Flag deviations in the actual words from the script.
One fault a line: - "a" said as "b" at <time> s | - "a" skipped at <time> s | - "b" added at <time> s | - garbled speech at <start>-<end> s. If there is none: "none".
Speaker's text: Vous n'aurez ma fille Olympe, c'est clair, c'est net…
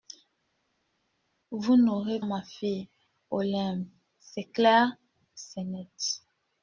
none